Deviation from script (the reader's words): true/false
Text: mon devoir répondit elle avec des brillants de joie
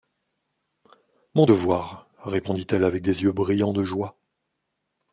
true